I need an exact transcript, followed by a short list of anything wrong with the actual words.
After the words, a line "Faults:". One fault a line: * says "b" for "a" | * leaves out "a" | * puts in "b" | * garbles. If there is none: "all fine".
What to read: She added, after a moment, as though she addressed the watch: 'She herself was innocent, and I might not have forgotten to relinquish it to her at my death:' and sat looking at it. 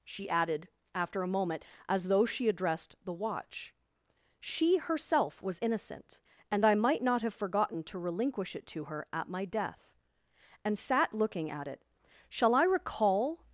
She added, after a moment, as though she addressed the watch: 'She herself was innocent, and I might not have forgotten to relinquish it to her at my death:' and sat looking at it. 'Shall I recall
Faults:
* puts in "Shall I recall"